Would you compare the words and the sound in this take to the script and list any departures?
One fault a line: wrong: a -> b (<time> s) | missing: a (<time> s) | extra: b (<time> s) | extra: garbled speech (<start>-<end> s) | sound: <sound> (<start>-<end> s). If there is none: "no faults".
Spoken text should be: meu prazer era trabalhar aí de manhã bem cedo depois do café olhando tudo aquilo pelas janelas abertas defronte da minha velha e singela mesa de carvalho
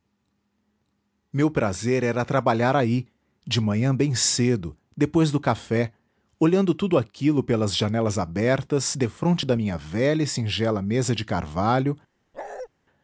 sound: bark (12.3-12.7 s)